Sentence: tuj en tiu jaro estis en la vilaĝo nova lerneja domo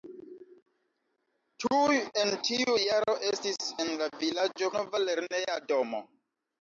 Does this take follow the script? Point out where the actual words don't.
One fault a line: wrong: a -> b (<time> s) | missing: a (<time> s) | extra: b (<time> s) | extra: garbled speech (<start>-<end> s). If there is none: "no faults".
no faults